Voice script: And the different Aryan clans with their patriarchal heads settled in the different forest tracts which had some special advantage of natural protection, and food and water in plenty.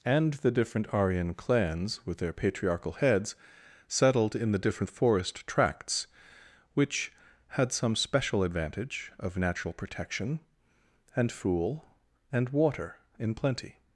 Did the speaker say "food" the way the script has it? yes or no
no